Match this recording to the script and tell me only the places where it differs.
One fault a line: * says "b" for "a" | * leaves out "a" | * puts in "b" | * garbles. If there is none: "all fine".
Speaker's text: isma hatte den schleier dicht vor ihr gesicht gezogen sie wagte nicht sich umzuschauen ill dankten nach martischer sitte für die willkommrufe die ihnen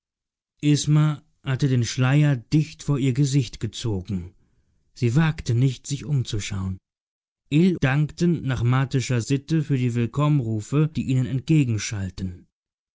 all fine